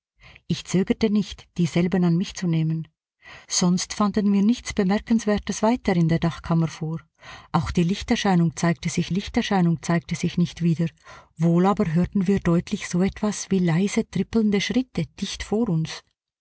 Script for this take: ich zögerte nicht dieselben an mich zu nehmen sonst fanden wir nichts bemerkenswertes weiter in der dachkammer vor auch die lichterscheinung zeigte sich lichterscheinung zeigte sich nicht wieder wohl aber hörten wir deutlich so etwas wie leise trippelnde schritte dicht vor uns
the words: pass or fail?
pass